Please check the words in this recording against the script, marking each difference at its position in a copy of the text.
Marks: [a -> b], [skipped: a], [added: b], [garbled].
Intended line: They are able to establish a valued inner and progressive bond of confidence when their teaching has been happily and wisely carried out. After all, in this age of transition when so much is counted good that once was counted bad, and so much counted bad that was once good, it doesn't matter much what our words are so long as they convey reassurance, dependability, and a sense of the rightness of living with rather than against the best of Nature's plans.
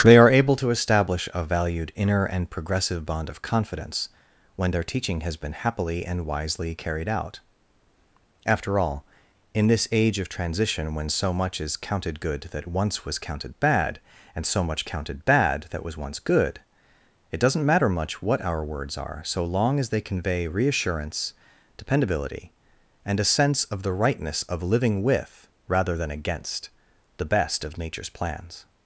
They are able to establish a valued inner and progressive bond of confidence when their teaching has been happily and wisely carried out. After all, in this age of transition when so much is counted good that once was counted bad, and so much counted bad that was once good, it doesn't matter much what our words are so long as they convey reassurance, dependability, and a sense of the rightness of living with rather than against the best of Nature's plans.